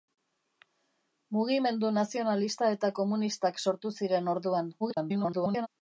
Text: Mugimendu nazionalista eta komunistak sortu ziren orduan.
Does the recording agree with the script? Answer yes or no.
no